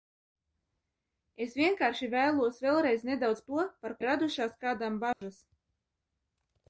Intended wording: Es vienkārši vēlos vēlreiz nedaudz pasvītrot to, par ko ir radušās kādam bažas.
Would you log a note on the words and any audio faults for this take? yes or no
yes